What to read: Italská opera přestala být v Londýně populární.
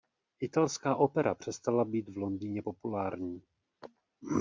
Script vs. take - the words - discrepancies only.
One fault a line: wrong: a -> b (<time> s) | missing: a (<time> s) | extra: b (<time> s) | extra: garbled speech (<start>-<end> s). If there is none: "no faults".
no faults